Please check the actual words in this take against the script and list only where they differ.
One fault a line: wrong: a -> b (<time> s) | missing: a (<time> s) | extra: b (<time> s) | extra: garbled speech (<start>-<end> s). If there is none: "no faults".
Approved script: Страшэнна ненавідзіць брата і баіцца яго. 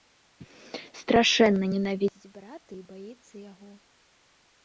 no faults